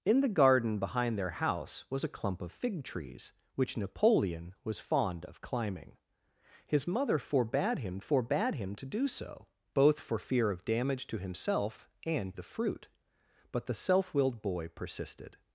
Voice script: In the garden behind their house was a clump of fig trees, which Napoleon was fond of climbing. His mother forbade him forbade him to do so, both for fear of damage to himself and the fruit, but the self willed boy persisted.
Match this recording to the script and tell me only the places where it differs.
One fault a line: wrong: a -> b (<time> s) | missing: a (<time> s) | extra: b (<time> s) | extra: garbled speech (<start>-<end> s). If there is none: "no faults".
no faults